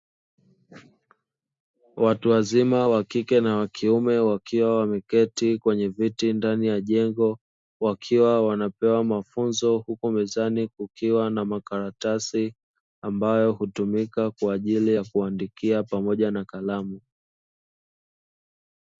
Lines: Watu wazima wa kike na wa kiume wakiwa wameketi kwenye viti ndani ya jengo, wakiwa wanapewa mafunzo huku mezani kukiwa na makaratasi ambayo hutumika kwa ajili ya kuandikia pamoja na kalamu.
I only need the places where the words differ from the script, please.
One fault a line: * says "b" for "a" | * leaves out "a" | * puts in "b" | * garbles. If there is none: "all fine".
all fine